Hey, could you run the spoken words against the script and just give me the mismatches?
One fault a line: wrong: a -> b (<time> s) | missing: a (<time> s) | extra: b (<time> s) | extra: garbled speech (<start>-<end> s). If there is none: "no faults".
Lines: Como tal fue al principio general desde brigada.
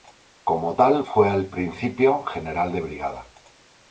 wrong: desde -> de (2.7 s)